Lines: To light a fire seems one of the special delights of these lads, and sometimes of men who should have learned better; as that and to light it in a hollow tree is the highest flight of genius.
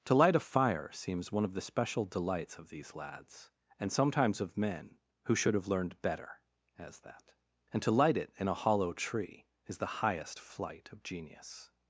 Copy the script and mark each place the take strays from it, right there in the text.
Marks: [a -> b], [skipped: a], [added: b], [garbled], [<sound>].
To light a fire seems one of the special delights of these lads, and sometimes of men who should have learned better; as that and to light it in a hollow tree is the highest flight of genius.